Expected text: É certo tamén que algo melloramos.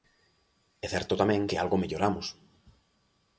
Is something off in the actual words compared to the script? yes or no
no